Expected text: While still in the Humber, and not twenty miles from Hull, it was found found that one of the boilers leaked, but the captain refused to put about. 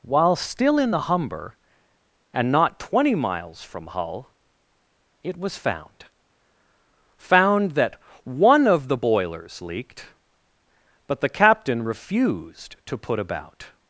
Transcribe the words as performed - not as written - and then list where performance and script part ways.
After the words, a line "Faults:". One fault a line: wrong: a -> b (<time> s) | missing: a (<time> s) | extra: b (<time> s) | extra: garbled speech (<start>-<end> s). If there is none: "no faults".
While still in the Humber, and not twenty miles from Hull, it was found found that one of the boilers leaked, but the captain refused to put about.
Faults:
no faults